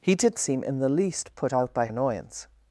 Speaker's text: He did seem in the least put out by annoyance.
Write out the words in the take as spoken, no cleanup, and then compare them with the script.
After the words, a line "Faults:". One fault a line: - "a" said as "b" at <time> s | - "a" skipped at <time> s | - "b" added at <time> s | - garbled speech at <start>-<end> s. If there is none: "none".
He did seem in the least put out by annoyance.
Faults:
none